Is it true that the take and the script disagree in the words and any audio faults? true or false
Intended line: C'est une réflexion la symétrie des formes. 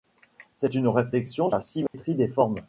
true